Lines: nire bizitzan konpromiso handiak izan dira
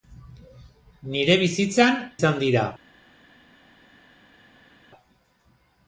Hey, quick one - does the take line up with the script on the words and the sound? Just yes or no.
no